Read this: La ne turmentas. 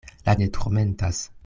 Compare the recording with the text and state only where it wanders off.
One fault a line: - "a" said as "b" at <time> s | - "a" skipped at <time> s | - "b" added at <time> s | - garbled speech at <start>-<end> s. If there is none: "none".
none